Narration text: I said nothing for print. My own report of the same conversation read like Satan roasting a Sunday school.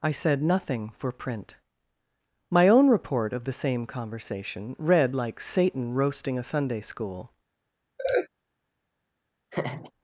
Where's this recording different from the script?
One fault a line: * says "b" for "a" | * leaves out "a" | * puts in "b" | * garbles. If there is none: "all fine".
all fine